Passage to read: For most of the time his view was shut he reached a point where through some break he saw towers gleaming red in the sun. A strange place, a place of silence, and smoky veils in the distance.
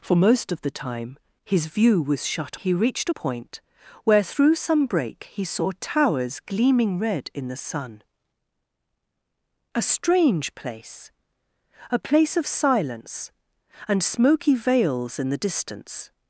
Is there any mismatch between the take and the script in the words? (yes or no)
no